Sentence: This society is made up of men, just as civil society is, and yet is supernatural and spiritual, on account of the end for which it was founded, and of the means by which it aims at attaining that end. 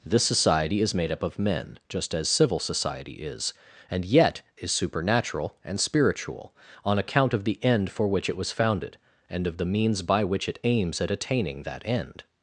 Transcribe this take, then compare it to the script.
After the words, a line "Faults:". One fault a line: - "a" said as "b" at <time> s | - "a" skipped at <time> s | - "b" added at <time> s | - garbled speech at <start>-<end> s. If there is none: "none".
This society is made up of men, just as civil society is, and yet is supernatural and spiritual, on account of the end for which it was founded, and of the means by which it aims at attaining that end.
Faults:
none